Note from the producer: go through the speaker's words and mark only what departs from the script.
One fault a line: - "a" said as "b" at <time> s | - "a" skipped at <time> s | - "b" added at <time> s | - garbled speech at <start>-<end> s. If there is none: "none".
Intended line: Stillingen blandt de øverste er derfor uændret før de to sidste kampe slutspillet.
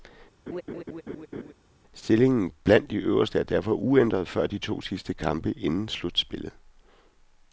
- "inden" added at 5.5 s